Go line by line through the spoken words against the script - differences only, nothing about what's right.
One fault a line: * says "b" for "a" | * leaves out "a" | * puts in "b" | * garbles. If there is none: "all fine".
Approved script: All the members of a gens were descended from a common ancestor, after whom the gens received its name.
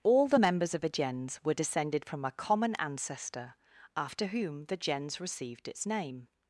all fine